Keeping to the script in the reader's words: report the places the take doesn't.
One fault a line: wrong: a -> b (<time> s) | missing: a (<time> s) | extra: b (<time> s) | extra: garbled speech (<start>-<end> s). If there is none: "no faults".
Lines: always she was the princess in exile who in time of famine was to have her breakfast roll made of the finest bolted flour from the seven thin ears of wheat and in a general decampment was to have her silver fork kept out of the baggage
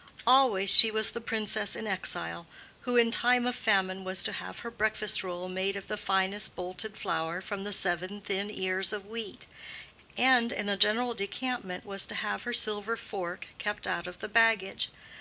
no faults